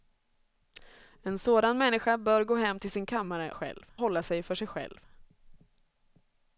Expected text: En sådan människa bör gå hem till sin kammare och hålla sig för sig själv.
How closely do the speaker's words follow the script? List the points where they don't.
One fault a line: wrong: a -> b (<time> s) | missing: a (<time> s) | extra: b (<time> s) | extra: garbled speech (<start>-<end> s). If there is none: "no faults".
wrong: och -> själv (3.5 s)